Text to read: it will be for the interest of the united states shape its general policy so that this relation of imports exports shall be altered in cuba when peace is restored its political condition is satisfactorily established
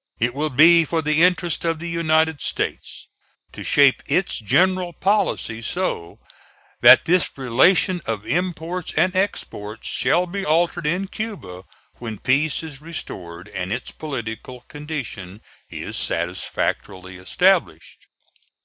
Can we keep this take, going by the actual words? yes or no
no